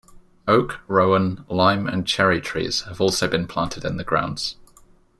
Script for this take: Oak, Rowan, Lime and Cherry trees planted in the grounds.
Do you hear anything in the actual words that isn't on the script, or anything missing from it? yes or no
yes